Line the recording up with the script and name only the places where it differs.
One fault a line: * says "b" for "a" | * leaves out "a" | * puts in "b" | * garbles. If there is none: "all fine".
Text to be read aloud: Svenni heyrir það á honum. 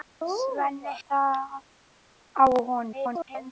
* leaves out "heyrir"
* garbles